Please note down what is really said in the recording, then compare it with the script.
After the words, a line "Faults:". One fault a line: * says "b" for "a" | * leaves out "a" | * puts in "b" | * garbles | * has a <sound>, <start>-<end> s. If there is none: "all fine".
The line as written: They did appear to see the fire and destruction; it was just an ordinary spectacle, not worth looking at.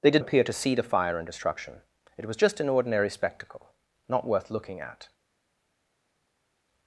They did appear to see the fire and destruction; it was just an ordinary spectacle, not worth looking at.
Faults:
all fine